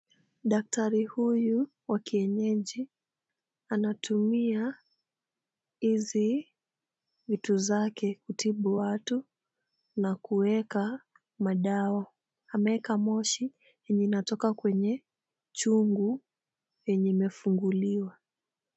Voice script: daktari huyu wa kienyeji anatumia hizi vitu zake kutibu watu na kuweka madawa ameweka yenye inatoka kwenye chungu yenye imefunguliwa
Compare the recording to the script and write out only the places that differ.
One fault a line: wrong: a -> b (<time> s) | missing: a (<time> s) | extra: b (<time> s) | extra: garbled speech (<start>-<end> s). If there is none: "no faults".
extra: moshi (13.0 s)